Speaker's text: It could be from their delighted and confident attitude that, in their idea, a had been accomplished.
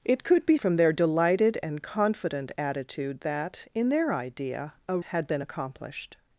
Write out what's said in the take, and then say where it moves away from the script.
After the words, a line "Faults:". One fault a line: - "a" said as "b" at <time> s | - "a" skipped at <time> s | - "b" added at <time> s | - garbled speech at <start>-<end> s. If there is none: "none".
It could be from their delighted and confident attitude that, in their idea, a had been accomplished.
Faults:
none